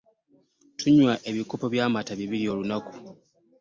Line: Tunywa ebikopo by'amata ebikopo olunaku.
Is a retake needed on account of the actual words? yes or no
yes